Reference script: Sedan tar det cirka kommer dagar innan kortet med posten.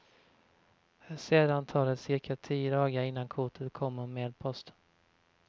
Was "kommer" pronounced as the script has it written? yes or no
no